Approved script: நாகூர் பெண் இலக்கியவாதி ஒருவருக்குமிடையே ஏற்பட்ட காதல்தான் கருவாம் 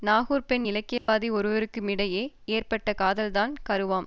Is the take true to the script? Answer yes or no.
yes